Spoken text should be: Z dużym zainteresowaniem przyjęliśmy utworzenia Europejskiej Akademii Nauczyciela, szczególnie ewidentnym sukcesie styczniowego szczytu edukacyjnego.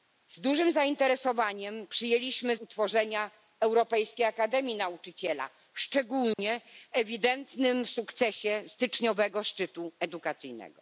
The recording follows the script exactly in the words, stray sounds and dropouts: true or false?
false